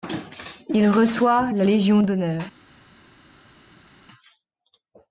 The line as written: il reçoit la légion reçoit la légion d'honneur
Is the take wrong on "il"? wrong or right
right